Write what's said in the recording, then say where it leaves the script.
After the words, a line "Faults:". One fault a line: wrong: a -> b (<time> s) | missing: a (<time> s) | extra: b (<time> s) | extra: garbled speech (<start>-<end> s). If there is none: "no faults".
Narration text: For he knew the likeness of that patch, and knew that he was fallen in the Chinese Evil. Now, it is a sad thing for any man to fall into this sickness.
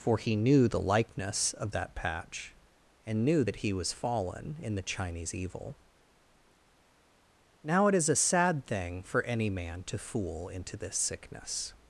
For he knew the likeness of that patch, and knew that he was fallen in the Chinese Evil. Now, it is a sad thing for any man to fool into this sickness.
Faults:
wrong: fall -> fool (10.0 s)